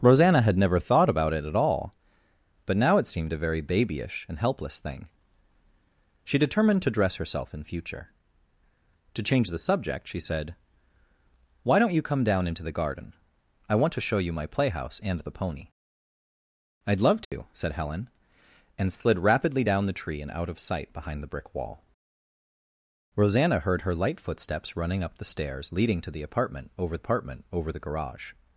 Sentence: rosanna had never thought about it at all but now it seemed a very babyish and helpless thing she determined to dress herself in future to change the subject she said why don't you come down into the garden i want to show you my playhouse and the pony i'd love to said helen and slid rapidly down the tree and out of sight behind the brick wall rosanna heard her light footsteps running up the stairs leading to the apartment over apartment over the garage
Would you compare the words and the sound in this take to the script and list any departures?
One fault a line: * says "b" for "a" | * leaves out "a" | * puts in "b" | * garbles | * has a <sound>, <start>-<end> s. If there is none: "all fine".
* has a dropout, 17.2-17.3 s